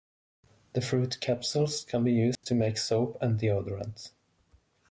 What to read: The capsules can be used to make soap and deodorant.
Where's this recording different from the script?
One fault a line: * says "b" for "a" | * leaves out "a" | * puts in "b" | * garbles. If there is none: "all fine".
* puts in "fruit"